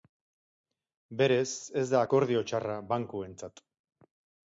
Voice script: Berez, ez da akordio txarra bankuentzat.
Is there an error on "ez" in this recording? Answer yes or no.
no